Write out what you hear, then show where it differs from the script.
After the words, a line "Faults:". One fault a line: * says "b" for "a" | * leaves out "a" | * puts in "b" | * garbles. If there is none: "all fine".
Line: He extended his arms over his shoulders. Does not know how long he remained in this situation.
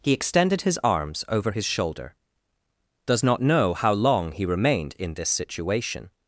He extended his arms over his shoulder. Does not know how long he remained in this situation.
Faults:
* says "shoulder" for "shoulders"